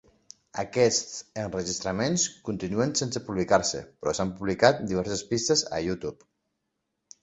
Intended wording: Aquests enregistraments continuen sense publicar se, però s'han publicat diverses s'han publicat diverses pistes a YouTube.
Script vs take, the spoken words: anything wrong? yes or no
yes